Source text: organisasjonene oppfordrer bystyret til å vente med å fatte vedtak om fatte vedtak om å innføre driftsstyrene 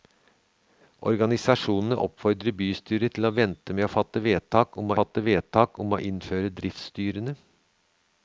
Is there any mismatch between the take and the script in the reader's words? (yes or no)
no